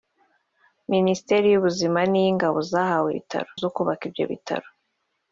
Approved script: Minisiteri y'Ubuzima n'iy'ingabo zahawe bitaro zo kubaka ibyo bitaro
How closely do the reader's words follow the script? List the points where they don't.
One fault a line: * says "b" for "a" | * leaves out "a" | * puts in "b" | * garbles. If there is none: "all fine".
all fine